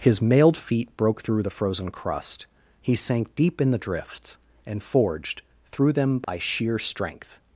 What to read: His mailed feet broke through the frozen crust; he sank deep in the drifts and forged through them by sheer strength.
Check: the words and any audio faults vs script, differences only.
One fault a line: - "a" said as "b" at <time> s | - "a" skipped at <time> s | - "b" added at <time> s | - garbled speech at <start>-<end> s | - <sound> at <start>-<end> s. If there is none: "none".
- dropout at 6.2-6.3 s